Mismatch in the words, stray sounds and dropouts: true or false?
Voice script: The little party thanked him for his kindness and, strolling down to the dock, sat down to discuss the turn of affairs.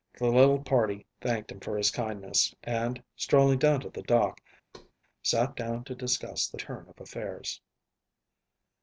true